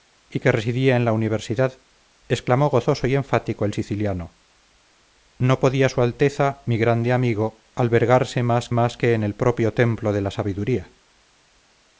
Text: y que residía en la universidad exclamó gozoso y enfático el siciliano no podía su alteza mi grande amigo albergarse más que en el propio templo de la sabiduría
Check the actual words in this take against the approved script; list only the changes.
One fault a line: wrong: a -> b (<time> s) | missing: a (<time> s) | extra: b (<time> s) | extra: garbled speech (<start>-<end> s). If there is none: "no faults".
extra: más (8.7 s)